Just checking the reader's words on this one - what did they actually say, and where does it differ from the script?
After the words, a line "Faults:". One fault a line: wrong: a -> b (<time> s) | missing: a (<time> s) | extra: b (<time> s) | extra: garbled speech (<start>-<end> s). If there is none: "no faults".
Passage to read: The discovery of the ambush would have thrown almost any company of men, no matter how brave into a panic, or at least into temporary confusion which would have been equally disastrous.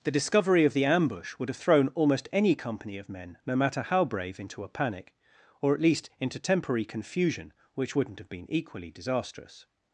The discovery of the ambush would have thrown almost any company of men, no matter how brave into a panic, or at least into temporary confusion which wouldn't have been equally disastrous.
Faults:
wrong: would -> wouldn't (7.9 s)